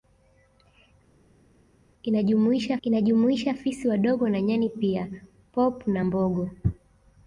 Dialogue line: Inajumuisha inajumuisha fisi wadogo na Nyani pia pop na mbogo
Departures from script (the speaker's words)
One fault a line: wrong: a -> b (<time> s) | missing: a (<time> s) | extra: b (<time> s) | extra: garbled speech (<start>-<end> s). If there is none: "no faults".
no faults